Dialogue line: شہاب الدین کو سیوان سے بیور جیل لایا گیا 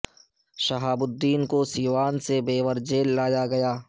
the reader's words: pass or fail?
pass